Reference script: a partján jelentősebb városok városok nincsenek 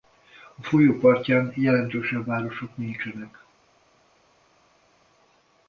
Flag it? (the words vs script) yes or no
yes